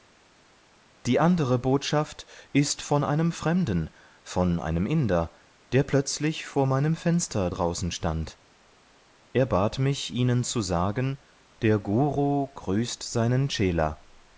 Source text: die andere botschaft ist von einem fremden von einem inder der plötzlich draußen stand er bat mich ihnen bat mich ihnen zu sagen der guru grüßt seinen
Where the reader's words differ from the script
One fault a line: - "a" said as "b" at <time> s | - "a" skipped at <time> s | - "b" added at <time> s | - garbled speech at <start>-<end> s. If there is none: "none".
- "vor meinem fenster" added at 6.4 s
- "bat mich ihnen" skipped at 10.4 s